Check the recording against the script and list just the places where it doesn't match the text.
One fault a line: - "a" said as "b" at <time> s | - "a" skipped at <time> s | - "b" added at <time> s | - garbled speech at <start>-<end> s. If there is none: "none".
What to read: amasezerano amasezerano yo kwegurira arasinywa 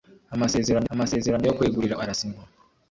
none